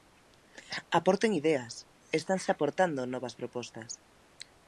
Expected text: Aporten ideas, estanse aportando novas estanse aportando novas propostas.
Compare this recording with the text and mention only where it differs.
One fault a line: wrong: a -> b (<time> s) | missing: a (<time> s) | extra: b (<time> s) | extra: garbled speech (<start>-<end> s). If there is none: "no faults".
missing: estanse aportando novas (3.4 s)